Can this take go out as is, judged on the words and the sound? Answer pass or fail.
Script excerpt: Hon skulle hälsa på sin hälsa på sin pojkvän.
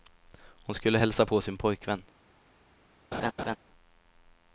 fail